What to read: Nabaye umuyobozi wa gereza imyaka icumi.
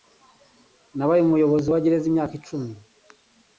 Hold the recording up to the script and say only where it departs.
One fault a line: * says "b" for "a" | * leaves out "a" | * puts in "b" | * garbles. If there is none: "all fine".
all fine